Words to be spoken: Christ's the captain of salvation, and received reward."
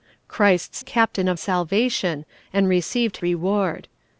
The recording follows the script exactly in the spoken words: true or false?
true